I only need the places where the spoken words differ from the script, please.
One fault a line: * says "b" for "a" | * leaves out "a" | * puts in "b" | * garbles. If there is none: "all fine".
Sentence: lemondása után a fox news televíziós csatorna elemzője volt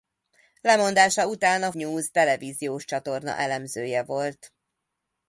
* leaves out "fox"